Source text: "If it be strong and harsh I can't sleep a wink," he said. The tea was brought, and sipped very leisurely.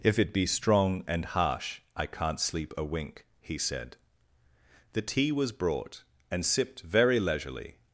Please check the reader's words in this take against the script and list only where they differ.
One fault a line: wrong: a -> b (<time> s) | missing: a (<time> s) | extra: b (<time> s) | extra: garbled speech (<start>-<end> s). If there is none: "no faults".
no faults